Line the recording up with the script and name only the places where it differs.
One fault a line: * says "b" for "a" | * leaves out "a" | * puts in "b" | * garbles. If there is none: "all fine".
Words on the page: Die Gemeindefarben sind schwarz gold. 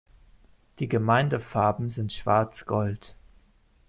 all fine